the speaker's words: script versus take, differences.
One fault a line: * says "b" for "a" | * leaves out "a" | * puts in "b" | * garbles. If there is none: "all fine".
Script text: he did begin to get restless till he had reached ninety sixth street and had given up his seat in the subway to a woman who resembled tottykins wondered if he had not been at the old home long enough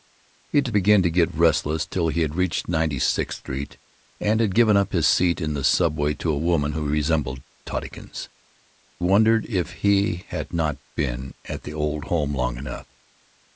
all fine